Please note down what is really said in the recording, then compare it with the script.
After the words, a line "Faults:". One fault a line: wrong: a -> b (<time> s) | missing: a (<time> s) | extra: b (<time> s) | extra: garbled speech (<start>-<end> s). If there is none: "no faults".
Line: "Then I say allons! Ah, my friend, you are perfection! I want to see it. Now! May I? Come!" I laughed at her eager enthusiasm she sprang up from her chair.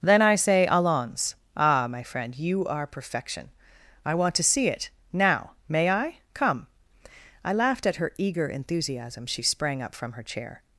"Then I say allons! Ah, my friend, you are perfection! I want to see it. Now! May I? Come!" I laughed at her eager enthusiasm she sprang up from her chair.
Faults:
no faults